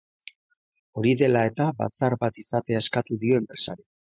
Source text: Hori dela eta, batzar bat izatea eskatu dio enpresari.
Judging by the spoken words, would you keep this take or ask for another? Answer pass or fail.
pass